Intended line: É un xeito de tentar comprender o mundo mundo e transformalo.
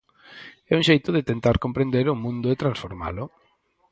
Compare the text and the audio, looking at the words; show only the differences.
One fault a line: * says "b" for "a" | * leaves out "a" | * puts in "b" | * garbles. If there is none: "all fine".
* leaves out "mundo"